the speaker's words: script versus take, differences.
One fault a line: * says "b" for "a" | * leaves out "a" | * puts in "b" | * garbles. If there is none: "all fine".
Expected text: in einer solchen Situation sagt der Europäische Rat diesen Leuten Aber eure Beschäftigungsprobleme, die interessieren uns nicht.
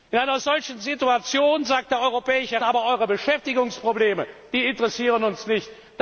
* leaves out "Rat diesen Leuten"